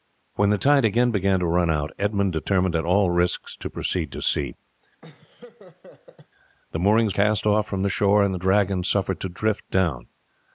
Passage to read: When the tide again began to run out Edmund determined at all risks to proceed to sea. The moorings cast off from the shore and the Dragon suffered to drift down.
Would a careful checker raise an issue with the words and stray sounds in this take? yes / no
yes